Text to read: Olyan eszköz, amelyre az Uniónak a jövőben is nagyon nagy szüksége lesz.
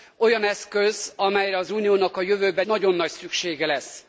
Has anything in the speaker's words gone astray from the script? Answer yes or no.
yes